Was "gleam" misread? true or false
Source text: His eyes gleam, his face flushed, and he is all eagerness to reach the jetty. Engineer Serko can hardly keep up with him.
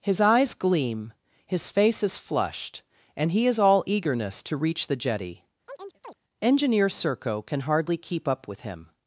false